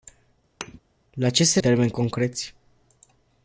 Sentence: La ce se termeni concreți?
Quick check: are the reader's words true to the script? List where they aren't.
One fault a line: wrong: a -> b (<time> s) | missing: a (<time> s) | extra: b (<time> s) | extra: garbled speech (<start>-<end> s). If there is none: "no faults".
no faults